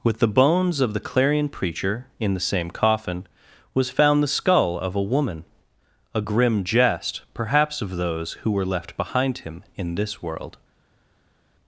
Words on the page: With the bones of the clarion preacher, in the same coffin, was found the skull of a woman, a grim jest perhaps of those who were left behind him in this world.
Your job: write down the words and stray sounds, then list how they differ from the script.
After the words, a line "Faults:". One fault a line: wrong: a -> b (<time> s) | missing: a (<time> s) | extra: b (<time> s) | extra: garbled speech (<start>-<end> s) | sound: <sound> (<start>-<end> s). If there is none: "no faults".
With the bones of the clarion preacher, in the same coffin, was found the skull of a woman, a grim jest perhaps of those who were left behind him in this world.
Faults:
no faults